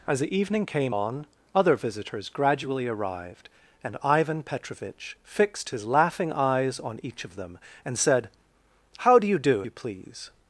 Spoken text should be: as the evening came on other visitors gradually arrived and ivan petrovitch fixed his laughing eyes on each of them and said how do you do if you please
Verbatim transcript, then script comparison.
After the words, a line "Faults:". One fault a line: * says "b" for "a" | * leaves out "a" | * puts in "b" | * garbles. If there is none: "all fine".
as the evening came on other visitors gradually arrived and ivan petrovitch fixed his laughing eyes on each of them and said how do you do you please
Faults:
* leaves out "if"